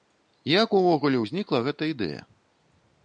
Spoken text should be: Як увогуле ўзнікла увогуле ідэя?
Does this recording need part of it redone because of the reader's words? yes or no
yes